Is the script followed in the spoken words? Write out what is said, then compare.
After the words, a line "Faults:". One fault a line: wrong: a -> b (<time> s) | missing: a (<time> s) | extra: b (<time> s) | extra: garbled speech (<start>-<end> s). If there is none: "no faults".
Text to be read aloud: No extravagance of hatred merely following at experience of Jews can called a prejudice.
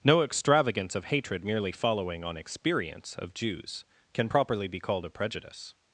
No extravagance of hatred merely following on experience of Jews can properly be called a prejudice.
Faults:
wrong: at -> on (2.2 s)
extra: properly be (4.3 s)